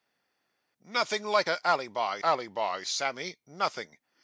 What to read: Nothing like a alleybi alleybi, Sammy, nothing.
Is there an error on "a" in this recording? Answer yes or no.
no